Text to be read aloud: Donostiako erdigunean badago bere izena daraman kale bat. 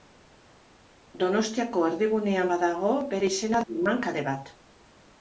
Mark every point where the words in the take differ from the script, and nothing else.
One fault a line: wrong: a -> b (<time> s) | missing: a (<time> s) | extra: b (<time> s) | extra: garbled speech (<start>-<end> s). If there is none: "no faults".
no faults